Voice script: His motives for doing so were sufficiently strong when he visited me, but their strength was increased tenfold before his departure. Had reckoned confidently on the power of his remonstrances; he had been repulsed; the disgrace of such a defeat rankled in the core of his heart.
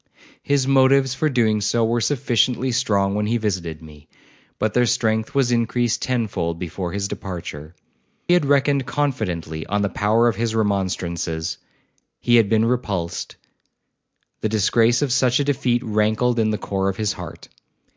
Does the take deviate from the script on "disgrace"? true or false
false